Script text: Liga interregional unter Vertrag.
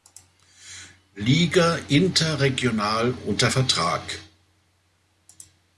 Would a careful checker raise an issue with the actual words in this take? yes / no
no